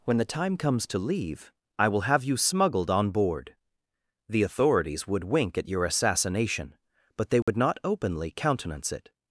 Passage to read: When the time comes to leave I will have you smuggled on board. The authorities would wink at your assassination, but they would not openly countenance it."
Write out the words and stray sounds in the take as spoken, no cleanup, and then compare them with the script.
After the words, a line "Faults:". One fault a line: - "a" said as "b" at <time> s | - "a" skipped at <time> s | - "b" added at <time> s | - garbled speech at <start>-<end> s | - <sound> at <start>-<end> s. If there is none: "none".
When the time comes to leave I will have you smuggled on board. The authorities would wink at your assassination, but they would not openly countenance it."
Faults:
- dropout at 7.4-7.5 s